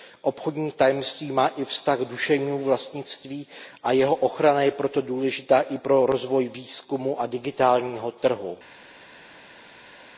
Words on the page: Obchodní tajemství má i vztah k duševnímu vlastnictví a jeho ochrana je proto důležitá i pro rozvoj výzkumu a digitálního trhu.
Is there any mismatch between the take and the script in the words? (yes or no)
no